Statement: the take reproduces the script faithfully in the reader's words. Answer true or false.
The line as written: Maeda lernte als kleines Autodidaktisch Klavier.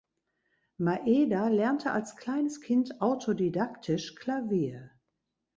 false